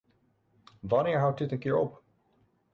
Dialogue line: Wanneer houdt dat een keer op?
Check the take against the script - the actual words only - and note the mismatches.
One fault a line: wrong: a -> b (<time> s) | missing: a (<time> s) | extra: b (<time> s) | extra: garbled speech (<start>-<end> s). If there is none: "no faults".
wrong: dat -> dit (1.4 s)